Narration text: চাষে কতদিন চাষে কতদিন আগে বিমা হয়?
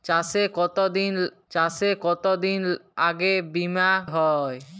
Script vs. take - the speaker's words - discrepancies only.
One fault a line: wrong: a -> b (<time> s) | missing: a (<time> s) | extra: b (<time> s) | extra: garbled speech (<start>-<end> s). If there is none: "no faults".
no faults